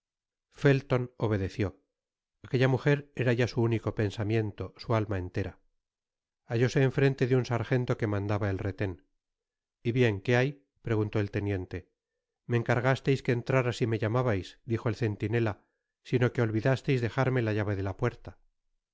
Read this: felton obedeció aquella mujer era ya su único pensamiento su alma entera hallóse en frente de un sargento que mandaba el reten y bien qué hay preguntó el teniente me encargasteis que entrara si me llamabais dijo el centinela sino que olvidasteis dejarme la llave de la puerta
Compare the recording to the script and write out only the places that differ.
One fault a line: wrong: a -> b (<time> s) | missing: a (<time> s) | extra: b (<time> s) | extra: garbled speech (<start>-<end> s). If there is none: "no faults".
no faults